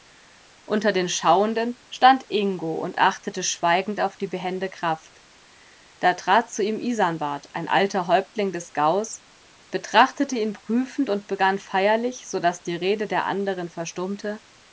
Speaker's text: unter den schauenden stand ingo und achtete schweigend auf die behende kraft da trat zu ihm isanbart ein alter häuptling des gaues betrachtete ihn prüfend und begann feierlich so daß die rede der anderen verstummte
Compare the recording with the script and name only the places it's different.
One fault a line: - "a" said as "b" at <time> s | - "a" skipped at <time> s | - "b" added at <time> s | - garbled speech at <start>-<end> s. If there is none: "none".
none